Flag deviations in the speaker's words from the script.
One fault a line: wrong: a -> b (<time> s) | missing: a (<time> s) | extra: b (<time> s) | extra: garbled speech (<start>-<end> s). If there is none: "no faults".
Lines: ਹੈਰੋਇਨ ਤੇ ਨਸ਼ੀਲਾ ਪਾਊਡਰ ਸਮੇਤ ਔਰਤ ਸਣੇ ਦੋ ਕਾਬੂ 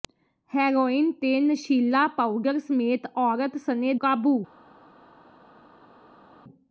missing: ਦੋ (3.9 s)